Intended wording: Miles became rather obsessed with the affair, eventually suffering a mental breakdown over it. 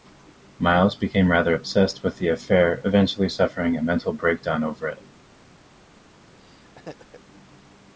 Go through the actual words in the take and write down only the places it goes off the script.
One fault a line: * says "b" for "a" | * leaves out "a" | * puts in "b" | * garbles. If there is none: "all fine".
all fine